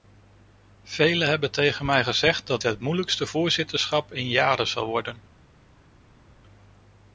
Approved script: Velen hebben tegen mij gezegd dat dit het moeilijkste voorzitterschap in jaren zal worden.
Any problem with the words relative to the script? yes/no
yes